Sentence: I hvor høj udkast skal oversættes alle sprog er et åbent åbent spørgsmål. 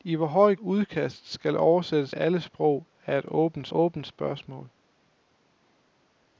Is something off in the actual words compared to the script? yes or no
no